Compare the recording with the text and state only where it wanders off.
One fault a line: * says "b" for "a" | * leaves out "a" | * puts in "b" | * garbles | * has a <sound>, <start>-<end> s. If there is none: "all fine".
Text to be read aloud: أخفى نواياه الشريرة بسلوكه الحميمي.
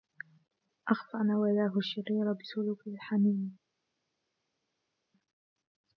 all fine